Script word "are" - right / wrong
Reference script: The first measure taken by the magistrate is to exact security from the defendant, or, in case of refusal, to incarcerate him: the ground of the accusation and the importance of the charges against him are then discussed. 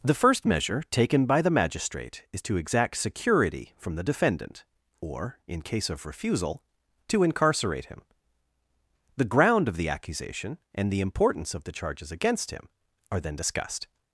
right